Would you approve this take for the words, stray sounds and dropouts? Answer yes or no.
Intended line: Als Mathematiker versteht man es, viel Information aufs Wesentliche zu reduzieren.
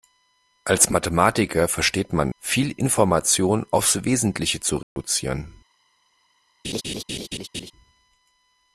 no